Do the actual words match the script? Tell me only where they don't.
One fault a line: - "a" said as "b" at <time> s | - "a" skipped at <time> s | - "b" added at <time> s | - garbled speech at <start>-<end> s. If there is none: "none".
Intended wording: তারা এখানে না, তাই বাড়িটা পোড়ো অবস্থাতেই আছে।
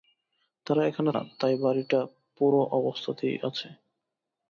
none